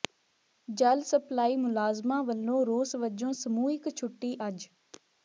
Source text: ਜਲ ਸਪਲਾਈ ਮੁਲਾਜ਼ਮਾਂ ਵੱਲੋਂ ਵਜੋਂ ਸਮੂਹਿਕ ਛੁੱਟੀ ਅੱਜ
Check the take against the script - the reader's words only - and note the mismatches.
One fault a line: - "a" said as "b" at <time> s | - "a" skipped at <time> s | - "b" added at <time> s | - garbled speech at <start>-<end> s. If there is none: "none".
- "ਰੋਸ" added at 2.6 s